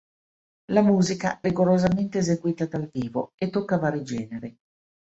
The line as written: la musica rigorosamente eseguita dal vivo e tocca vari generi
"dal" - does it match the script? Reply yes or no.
yes